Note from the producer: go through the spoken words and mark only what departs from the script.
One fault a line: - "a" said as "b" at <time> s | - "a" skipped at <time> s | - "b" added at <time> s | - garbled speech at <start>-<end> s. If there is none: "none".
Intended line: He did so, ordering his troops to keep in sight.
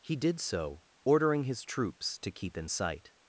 none